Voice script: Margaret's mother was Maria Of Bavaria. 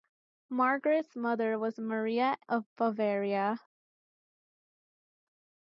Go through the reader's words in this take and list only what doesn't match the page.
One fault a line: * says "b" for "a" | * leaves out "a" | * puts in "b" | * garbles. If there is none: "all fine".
all fine